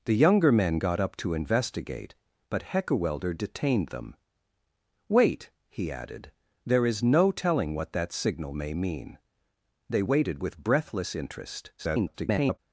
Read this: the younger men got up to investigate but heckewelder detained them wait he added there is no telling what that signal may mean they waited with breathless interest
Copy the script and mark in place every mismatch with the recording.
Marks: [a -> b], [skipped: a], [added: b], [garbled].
the younger men got up to investigate but heckewelder detained them wait he added there is no telling what that signal may mean they waited with breathless interest [garbled]